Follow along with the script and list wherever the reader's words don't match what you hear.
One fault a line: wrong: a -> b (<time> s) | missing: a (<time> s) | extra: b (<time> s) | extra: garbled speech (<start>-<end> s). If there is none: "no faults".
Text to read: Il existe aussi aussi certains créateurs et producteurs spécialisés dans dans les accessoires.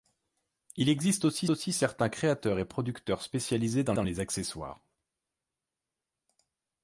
no faults